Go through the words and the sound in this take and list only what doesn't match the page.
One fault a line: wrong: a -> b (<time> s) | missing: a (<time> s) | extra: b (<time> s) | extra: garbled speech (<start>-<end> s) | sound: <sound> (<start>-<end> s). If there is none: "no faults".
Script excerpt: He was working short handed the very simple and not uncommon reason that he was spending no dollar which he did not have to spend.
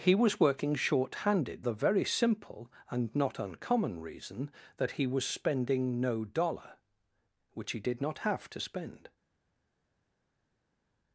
no faults